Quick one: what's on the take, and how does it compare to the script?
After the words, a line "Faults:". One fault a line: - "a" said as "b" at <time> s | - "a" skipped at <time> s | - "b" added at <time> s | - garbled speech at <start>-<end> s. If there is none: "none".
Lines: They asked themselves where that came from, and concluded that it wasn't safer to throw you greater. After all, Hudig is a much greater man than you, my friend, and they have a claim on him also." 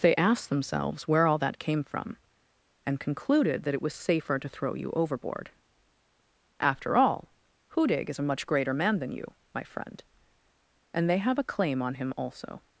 They asked themselves where all that came from, and concluded that it was safer to throw you overboard. After all, Hudig is a much greater man than you, my friend, and they have a claim on him also."
Faults:
- "all" added at 1.3 s
- "wasn't" said as "was" at 3.8 s
- "greater" said as "overboard" at 4.9 s